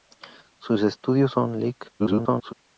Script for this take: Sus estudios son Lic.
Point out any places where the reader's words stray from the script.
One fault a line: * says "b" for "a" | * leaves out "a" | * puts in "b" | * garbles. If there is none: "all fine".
* garbles